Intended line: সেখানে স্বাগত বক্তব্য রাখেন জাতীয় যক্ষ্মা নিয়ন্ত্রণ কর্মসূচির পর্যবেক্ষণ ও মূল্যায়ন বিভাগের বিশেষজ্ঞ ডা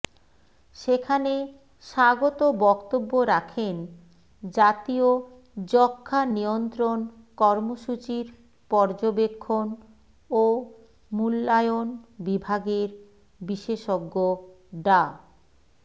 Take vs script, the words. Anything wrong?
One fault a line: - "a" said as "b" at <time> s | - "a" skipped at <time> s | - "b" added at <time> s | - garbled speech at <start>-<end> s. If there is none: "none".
none